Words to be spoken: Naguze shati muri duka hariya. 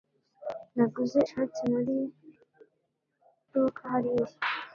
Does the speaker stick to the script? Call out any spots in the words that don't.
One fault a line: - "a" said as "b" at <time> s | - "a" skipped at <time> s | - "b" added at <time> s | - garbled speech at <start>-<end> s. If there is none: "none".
none